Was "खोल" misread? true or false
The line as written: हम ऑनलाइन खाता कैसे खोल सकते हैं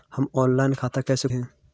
true